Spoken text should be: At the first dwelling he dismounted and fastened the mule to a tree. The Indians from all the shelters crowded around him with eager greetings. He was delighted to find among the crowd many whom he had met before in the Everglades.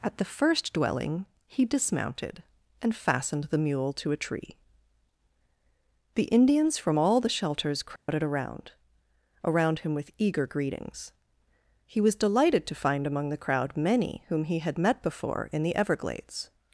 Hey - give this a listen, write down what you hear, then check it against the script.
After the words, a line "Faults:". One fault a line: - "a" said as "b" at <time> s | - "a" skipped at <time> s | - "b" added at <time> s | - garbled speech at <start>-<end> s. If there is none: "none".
At the first dwelling he dismounted and fastened the mule to a tree. The Indians from all the shelters crowded around around him with eager greetings. He was delighted to find among the crowd many whom he had met before in the Everglades.
Faults:
- "around" added at 9.5 s